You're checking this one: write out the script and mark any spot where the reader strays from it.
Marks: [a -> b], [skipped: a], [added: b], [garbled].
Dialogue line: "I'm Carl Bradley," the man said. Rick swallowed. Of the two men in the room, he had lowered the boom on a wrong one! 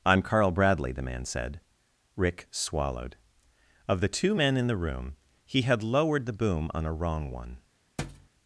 "I'm Carl Bradley," the man said. Rick swallowed. Of the two men in the room, he had lowered the boom on a wrong one!